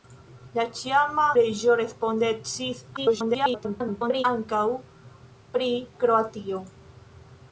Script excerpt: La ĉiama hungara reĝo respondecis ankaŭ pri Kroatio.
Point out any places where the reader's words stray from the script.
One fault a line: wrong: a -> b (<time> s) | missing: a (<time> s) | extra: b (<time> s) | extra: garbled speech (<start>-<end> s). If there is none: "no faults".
missing: hungara (1.2 s)
extra: garbled speech (3.0-4.2 s)